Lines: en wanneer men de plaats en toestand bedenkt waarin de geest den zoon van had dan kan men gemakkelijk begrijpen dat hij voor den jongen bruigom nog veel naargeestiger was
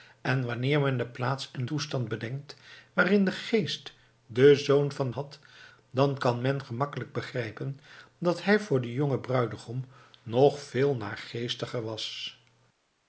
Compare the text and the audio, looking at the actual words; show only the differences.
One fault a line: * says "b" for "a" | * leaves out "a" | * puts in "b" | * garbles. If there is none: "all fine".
all fine